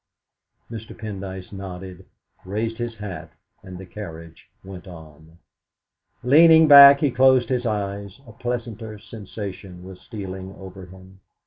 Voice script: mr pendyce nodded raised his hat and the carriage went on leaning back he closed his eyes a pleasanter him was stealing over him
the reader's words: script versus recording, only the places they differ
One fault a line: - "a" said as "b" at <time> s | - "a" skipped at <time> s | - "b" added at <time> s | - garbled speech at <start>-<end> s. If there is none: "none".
- "him" said as "sensation" at 9.0 s